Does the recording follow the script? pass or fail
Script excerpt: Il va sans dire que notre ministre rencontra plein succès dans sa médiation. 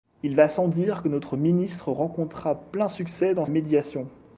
fail